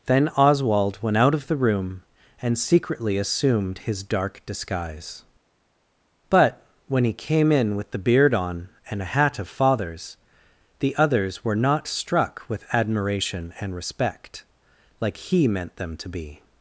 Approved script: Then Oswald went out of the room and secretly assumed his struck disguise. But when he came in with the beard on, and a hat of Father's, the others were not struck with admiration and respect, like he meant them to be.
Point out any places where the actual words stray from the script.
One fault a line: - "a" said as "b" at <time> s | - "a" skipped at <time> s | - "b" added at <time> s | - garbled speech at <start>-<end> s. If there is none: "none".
- "struck" said as "dark" at 4.0 s